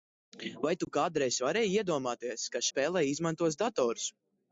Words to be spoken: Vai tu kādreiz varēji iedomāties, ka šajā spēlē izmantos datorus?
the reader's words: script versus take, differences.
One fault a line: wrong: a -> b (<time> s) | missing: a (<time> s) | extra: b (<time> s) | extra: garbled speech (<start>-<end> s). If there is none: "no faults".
missing: šajā (2.6 s)